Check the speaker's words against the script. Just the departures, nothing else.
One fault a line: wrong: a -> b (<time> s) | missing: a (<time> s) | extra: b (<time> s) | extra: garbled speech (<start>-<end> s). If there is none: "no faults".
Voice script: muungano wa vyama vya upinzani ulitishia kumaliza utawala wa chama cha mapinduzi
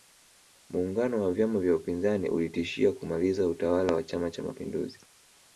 no faults